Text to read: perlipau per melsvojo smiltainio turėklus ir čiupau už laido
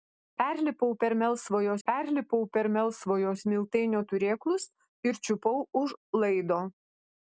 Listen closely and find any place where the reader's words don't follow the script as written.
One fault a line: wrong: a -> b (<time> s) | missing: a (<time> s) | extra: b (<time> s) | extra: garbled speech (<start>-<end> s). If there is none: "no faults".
extra: perlipau per melsvojo (1.9 s)